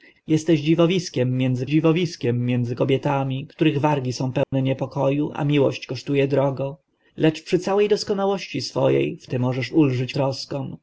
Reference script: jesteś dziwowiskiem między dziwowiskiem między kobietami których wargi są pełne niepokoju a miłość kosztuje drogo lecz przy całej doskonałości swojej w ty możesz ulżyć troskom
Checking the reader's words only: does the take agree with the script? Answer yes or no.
yes